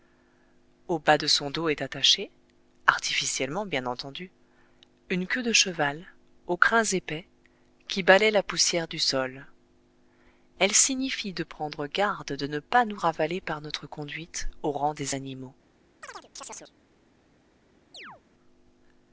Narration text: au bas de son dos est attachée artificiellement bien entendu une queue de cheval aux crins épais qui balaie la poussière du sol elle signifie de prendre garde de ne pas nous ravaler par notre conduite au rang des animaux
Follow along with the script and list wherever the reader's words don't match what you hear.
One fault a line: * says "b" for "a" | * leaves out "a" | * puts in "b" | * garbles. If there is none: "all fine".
all fine